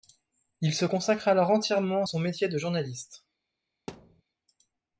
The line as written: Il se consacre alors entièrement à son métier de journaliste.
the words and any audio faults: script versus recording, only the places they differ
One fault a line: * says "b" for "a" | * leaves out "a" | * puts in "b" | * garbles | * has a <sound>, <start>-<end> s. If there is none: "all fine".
* has a thud, 3.9-4.2 s